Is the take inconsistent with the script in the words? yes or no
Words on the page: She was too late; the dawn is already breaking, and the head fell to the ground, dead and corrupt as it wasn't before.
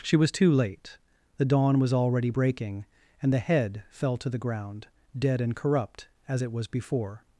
yes